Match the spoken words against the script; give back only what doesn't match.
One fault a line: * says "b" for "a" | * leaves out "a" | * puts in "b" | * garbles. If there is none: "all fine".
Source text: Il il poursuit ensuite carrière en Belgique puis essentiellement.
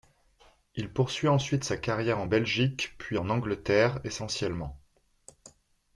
* leaves out "il"
* puts in "sa"
* puts in "en Angleterre"